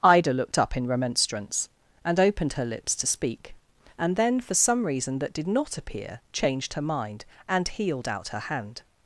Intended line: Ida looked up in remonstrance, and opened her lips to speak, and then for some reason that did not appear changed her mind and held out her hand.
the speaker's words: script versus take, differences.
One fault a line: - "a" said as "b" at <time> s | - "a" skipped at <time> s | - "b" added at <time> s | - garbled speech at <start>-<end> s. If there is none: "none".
- "held" said as "healed" at 7.7 s